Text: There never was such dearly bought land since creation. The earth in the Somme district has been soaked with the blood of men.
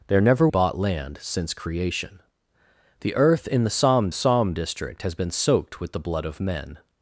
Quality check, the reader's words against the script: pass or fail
fail